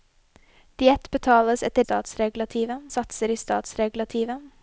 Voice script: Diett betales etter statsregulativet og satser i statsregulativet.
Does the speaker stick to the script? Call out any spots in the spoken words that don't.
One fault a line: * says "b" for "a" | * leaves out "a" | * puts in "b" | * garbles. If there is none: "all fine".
all fine